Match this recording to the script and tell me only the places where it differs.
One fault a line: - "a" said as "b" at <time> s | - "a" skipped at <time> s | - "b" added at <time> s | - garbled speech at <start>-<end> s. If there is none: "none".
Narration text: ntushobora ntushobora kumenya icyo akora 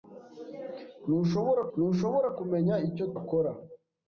none